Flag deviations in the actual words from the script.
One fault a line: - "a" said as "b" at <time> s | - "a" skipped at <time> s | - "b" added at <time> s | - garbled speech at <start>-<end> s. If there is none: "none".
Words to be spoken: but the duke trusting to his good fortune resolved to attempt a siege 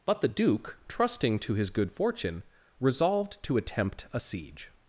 none